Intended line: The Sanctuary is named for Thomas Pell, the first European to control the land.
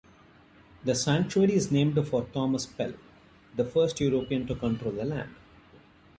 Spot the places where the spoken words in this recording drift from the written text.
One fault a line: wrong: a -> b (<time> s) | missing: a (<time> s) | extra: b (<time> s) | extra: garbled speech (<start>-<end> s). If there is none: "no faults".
no faults